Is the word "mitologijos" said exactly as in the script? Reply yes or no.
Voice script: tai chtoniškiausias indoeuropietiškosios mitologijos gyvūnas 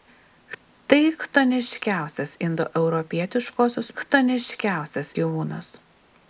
no